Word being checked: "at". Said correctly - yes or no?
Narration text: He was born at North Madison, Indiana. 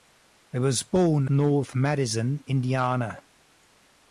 no